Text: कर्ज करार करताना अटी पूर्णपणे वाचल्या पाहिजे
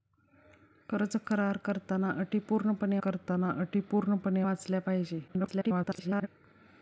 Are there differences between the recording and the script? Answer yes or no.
yes